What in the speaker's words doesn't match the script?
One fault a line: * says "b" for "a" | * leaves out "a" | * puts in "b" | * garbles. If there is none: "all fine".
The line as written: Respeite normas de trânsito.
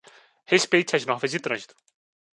* puts in "as"